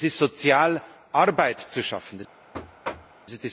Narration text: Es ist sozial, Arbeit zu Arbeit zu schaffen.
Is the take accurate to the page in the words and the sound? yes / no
no